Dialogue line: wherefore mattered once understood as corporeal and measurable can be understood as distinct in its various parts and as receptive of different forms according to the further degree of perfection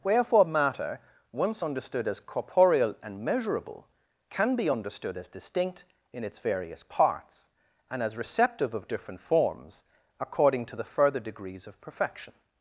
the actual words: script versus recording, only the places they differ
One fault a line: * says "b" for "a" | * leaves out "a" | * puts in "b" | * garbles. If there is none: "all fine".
* says "matter" for "mattered"
* says "degrees" for "degree"